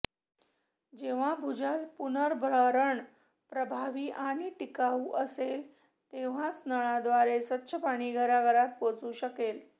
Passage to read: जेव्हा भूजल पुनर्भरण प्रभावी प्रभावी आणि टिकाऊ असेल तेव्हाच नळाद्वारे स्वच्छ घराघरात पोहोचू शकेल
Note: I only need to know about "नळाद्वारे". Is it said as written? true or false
true